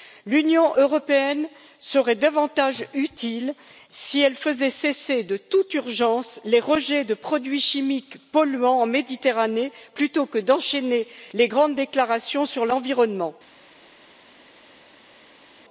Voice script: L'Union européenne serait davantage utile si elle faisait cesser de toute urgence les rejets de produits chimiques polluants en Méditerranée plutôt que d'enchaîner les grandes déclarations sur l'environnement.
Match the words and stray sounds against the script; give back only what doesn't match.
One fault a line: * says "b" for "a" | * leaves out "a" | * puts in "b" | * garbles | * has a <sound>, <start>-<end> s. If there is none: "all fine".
all fine